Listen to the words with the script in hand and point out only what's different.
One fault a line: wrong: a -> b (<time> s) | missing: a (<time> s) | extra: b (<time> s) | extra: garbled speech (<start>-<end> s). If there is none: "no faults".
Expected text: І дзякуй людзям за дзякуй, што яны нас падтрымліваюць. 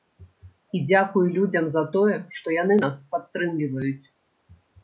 wrong: дзякуй -> тое (2.0 s)